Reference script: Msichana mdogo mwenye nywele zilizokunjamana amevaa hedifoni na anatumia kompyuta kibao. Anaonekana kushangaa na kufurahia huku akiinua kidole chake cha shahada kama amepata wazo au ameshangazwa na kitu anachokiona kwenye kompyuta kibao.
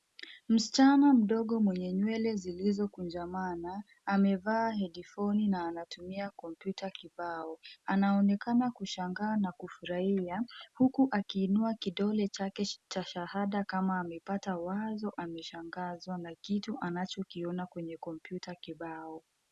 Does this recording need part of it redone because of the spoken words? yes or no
yes